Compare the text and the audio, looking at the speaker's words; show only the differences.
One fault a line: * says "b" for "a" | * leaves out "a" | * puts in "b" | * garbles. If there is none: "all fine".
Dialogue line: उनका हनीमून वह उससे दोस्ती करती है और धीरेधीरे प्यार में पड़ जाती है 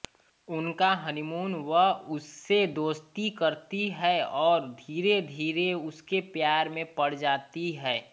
* puts in "उसके"